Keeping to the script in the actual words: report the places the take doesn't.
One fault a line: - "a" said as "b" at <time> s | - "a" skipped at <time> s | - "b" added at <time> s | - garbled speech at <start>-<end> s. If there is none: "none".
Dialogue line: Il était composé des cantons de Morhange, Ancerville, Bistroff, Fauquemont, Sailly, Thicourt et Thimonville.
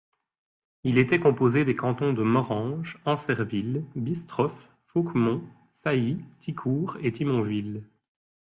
none